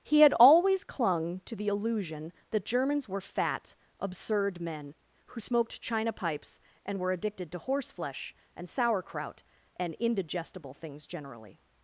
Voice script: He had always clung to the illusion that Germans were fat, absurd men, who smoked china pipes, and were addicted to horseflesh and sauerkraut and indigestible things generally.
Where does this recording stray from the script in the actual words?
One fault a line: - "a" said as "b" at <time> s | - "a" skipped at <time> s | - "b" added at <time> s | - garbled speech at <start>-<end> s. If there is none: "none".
none